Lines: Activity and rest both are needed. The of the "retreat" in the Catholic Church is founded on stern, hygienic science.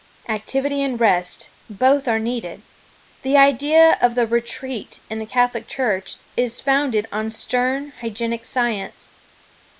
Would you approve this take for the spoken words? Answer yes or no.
no